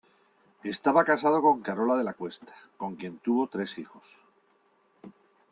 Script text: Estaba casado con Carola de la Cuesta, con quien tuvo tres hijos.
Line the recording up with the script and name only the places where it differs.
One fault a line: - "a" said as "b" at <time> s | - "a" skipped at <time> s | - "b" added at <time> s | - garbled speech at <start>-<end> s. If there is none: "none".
none